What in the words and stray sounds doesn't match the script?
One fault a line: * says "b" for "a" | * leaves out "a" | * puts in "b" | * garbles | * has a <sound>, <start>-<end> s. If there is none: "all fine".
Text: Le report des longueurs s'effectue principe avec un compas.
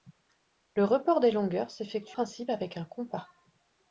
all fine